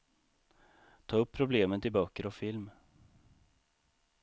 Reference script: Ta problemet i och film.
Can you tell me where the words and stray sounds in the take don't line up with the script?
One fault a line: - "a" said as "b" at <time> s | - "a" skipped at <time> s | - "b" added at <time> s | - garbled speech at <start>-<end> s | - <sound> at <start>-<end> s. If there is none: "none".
- "upp" added at 1.2 s
- "böcker" added at 1.9 s